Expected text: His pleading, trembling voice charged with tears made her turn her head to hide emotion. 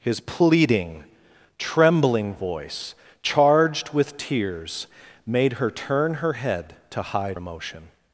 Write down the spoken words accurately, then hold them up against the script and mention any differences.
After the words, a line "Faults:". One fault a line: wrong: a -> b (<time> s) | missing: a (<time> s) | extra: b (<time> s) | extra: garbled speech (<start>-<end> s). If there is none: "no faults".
His pleading, trembling voice charged with tears made her turn her head to hide emotion.
Faults:
no faults